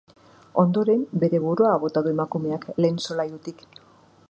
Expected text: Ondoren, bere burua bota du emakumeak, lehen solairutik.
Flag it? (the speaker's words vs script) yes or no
no